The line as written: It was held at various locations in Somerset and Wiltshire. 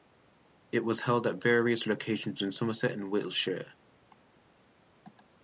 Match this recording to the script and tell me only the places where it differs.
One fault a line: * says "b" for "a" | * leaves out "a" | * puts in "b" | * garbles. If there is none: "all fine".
all fine